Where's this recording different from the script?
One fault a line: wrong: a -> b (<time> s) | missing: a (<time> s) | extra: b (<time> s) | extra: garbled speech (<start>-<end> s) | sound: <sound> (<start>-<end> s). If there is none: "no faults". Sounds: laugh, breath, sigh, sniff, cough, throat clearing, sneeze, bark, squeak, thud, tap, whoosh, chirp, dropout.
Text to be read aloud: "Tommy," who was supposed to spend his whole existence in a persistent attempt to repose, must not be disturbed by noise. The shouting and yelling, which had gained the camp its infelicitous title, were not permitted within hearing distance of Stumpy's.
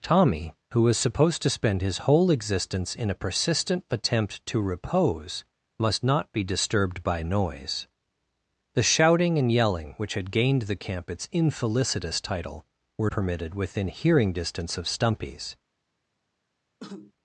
missing: not (13.1 s)
sound: cough (16.8-17.1 s)